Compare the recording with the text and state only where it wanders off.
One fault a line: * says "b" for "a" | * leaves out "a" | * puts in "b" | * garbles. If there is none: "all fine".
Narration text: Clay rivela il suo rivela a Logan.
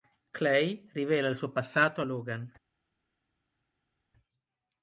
* says "passato" for "rivela"